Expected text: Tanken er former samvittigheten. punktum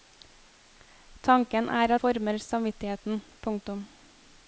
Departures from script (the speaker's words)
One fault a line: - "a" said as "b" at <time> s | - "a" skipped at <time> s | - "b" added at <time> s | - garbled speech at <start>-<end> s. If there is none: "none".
none